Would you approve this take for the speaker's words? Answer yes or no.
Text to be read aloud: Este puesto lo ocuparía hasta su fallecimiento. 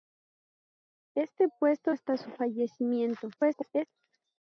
no